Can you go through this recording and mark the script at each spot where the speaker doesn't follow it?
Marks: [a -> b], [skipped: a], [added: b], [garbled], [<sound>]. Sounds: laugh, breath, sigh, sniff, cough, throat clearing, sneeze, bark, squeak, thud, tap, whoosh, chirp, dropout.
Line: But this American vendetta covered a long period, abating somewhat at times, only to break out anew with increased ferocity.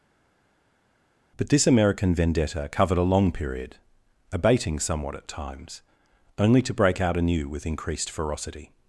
But this American vendetta covered a long period, abating somewhat at times, only to break out anew with increased ferocity.